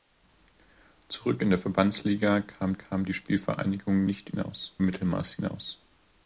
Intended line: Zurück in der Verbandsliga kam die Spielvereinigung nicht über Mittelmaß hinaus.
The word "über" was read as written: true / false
false